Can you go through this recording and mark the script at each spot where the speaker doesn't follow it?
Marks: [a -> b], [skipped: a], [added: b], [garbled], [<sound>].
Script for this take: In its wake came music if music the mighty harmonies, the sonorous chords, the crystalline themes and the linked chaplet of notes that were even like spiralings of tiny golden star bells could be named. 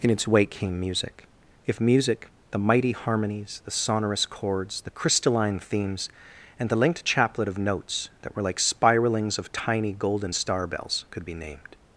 In its wake came music if music the mighty harmonies, the sonorous chords, the crystalline themes and the linked chaplet of notes that were [skipped: even] like spiralings of tiny golden star bells could be named.